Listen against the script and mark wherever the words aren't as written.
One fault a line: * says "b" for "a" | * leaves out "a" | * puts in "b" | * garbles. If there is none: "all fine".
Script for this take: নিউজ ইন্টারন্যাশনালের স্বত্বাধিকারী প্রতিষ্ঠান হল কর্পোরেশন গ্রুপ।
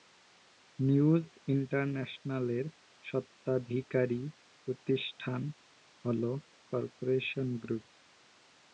all fine